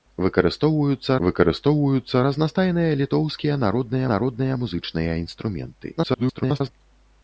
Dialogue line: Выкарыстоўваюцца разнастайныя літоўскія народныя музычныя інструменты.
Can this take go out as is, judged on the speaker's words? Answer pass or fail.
fail